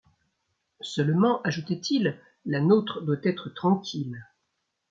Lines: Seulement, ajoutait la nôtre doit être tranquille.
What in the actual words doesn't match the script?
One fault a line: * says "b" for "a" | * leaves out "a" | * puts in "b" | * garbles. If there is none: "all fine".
* puts in "il"